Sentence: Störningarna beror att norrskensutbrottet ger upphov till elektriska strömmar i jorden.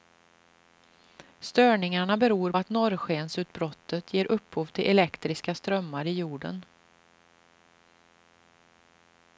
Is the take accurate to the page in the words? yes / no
yes